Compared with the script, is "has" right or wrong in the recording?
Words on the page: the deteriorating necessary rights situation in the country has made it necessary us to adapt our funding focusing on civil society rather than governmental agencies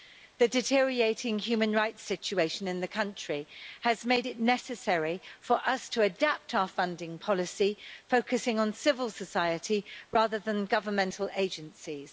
right